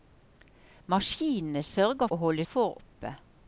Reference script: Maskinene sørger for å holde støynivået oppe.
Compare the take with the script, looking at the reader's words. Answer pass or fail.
fail